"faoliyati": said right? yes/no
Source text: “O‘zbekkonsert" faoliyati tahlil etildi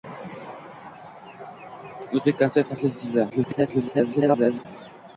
no